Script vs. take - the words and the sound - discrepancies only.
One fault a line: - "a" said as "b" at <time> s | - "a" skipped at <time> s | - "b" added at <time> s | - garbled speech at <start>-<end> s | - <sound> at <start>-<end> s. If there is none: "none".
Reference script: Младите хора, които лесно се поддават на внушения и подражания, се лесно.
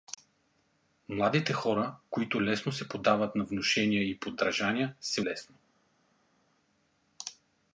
none